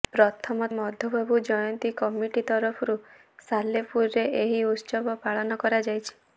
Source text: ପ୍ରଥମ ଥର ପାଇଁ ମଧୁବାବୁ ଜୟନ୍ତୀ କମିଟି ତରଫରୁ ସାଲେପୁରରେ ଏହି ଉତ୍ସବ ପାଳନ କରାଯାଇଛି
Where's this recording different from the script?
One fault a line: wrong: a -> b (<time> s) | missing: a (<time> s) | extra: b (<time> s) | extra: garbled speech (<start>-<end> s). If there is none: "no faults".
missing: ଥର ପାଇଁ (0.7 s)